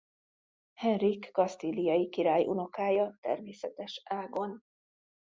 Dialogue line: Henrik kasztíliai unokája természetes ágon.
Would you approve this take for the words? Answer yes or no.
no